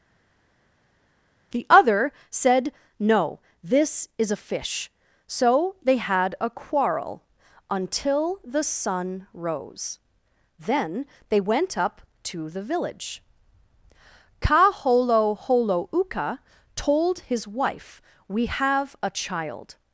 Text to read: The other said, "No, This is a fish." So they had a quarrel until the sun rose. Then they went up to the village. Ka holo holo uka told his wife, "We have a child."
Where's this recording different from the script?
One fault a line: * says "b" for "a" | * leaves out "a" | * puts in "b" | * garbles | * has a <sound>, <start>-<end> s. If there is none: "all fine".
all fine